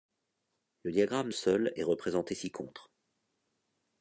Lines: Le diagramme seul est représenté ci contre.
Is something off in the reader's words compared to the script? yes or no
no